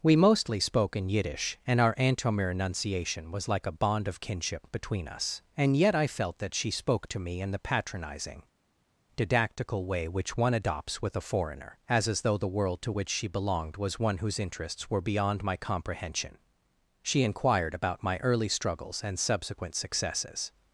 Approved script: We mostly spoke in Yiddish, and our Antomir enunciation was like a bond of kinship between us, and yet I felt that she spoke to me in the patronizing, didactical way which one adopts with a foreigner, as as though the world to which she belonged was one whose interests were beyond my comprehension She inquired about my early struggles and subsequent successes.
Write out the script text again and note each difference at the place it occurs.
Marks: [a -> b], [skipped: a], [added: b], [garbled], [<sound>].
We mostly spoke in Yiddish, and our Antomir enunciation was like a bond of kinship between us, and yet I felt that she spoke to me in the patronizing, didactical way which one adopts with a foreigner, as as though the world to which she belonged was one whose interests were beyond my comprehension She inquired about my early struggles and subsequent successes.